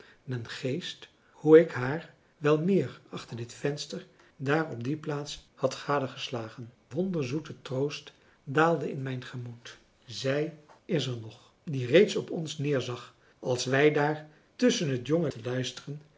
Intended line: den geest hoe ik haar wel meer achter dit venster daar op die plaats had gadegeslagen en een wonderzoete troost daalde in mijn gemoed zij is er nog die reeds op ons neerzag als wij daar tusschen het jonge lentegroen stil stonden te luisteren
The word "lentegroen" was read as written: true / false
false